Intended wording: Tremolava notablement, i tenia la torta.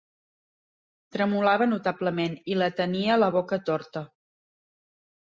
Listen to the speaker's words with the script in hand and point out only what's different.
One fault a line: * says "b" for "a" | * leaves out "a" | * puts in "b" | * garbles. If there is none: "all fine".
* puts in "la"
* puts in "boca"